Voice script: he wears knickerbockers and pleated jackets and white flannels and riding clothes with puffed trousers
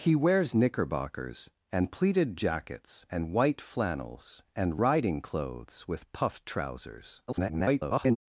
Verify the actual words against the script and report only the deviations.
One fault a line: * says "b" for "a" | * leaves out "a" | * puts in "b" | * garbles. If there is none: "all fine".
* garbles